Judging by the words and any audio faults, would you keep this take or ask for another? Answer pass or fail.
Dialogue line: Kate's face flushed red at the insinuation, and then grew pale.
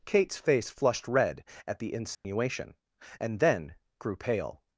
fail